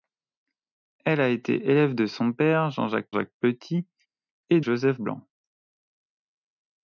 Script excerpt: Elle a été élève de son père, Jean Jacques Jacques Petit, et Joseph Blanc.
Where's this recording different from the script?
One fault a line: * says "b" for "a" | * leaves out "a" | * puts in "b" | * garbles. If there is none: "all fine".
all fine